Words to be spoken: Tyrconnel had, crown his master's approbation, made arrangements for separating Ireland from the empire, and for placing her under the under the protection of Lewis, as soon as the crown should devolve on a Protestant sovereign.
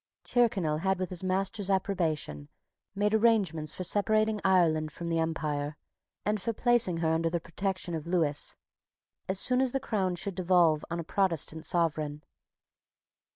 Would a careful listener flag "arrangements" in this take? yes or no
no